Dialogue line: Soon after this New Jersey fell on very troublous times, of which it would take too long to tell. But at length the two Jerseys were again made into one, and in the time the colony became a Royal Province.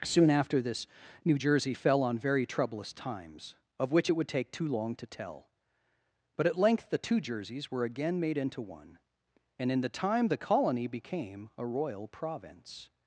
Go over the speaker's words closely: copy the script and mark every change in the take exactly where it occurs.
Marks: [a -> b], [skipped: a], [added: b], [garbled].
Soon after this New Jersey fell on very troublous times, of which it would take too long to tell. But at length the two Jerseys were again made into one, and in the time the colony became a Royal Province.